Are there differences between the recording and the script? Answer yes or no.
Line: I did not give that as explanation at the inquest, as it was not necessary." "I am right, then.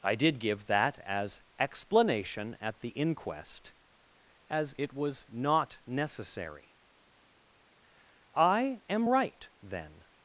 yes